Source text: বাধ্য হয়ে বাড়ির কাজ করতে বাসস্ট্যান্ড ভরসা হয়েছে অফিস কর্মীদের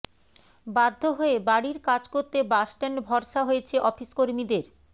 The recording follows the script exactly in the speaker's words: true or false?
true